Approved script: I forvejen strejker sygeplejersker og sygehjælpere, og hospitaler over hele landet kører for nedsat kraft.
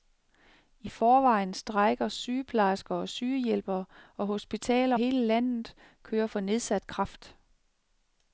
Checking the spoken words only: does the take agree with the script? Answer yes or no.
no